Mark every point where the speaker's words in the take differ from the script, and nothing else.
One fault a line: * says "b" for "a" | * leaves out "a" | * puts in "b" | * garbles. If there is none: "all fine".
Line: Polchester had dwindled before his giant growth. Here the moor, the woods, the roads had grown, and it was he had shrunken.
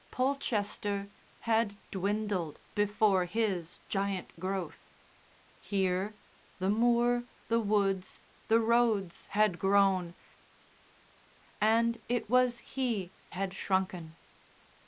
all fine